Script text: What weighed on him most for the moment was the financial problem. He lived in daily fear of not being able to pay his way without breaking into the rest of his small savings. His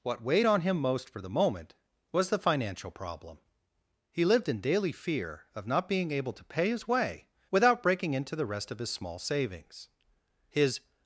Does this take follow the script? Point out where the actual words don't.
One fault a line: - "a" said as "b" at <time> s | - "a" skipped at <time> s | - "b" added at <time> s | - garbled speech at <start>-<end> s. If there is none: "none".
none